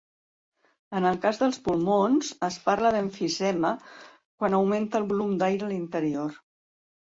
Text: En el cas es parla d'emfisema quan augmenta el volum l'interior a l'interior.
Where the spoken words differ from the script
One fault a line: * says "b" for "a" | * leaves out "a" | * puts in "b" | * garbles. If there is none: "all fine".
* puts in "dels pulmons"
* says "d'aire" for "l'interior"